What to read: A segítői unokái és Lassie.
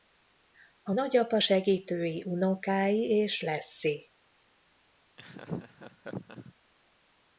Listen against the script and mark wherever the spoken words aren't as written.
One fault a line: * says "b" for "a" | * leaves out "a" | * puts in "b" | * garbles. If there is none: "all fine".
* puts in "nagyapa"